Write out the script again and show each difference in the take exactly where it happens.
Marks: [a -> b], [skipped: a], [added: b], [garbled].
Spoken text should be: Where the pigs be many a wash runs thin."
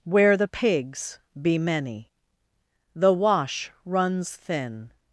Where the pigs be many [a -> the] wash runs thin."